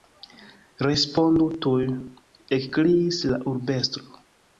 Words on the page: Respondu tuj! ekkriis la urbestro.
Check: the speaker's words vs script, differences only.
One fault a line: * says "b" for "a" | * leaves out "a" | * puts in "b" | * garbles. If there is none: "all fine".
all fine